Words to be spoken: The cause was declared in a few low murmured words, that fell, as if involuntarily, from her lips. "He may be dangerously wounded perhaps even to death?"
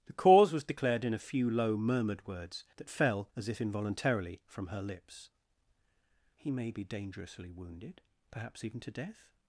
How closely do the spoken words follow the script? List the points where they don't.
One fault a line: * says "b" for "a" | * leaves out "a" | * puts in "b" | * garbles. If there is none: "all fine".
all fine